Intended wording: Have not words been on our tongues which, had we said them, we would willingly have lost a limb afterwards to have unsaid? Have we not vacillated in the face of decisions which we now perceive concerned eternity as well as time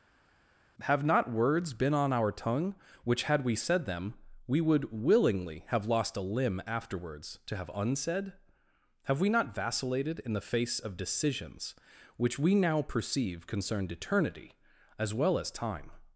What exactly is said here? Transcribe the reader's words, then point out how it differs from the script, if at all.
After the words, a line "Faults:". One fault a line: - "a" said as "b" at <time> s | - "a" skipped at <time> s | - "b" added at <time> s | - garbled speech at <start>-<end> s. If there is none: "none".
Have not words been on our tongue which, had we said them, we would willingly have lost a limb afterwards to have unsaid? Have we not vacillated in the face of decisions which we now perceive concerned eternity as well as time
Faults:
- "tongues" said as "tongue" at 2.3 s